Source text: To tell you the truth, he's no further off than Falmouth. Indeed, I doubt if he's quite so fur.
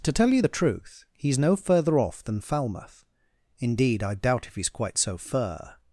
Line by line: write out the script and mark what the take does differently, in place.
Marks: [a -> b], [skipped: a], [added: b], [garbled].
To tell you the truth, he's no further off than Falmouth. Indeed, I doubt if he's quite so fur.